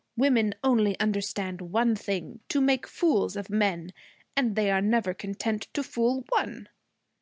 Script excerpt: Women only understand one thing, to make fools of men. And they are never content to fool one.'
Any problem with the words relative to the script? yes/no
no